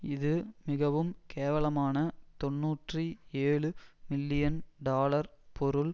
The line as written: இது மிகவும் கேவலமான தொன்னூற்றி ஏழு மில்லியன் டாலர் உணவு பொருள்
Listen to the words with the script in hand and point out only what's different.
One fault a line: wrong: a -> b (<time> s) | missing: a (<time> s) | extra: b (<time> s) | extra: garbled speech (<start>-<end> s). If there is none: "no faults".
missing: உணவு (5.3 s)